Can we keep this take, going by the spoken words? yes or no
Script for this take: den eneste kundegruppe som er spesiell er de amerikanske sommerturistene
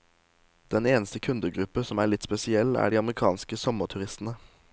no